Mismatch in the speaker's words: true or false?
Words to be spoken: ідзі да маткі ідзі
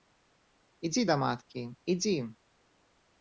false